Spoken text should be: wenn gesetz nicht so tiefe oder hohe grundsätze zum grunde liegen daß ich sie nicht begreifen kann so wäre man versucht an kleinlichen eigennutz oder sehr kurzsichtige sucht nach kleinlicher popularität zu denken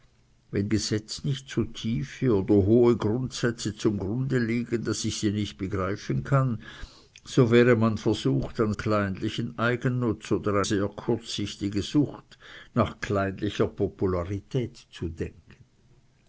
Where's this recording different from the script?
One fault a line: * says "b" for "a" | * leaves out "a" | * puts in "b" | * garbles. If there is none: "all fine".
all fine